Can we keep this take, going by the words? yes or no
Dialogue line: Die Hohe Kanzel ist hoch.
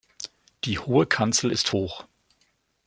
yes